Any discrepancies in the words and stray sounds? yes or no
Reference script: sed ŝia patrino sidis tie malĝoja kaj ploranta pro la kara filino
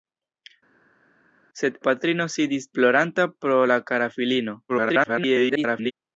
yes